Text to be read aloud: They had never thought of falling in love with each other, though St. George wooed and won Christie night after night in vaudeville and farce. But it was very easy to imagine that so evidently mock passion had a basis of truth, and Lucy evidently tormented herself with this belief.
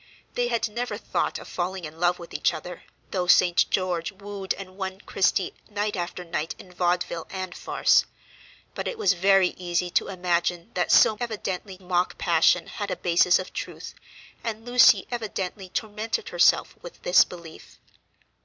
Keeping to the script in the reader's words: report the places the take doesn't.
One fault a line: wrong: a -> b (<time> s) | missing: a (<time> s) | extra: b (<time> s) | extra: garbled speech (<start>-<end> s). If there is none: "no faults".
no faults